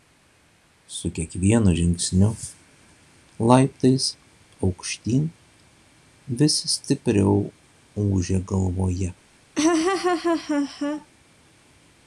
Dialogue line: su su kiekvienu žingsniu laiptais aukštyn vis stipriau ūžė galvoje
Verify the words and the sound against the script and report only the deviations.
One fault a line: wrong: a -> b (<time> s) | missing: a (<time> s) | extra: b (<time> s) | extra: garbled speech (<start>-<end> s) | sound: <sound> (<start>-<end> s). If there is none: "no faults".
missing: su (1.1 s)
sound: laugh (9.6-11.1 s)